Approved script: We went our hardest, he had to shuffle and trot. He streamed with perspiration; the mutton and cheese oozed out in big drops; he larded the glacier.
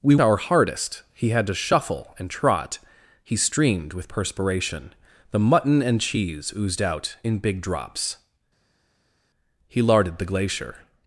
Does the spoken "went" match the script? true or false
false